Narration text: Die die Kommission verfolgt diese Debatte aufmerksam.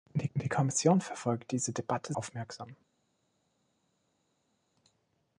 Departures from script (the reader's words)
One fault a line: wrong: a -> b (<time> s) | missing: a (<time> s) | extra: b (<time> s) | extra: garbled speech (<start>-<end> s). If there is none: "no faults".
no faults